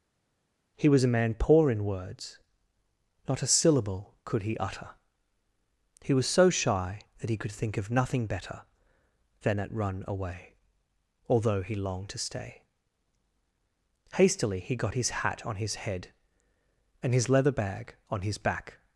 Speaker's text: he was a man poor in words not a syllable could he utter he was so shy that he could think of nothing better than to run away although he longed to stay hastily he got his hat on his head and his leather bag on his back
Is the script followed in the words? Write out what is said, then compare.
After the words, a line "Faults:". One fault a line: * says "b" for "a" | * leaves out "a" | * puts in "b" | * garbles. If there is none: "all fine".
he was a man poor in words not a syllable could he utter he was so shy that he could think of nothing better than at run away although he longed to stay hastily he got his hat on his head and his leather bag on his back
Faults:
* says "at" for "to"